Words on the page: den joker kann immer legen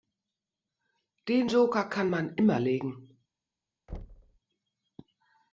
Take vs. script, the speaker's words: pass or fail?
fail